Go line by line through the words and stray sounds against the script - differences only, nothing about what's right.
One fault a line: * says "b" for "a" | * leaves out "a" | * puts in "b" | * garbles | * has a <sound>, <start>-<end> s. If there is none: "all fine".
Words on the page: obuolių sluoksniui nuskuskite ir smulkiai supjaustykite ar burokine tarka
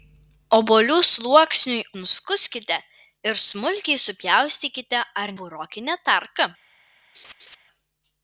* has a laugh, 7.1-7.6 s